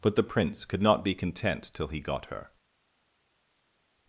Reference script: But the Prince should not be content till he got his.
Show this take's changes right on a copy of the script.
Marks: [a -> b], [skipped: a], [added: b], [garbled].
But the Prince [should -> could] not be content till he got [his. -> her]